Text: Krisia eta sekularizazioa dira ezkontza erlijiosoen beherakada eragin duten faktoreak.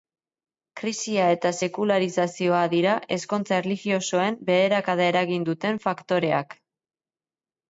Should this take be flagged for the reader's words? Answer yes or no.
no